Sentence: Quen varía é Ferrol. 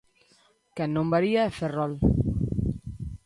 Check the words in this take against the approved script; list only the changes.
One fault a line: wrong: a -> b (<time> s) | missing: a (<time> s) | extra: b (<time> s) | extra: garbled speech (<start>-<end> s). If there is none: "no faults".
extra: non (0.9 s)